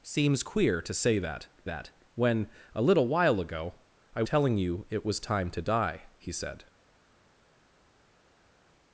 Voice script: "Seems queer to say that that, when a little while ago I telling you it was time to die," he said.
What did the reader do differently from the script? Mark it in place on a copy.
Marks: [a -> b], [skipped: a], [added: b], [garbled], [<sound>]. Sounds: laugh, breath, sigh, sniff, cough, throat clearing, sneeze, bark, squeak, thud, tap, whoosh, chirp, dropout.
"Seems queer to say that that, when a little while ago I telling you it was time to die," he said.